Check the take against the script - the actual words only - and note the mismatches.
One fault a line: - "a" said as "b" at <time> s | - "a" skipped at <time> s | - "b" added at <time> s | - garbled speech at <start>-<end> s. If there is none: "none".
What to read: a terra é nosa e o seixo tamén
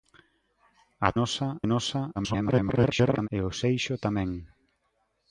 - "terra" said as "nosa" at 1.2 s
- garbled speech at 2.1-3.3 s